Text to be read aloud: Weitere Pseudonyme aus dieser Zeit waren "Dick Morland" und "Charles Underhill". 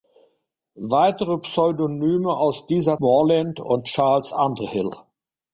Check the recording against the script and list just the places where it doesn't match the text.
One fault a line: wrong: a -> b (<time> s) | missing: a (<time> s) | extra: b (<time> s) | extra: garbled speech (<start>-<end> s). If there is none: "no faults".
missing: Zeit waren Dick (3.0 s)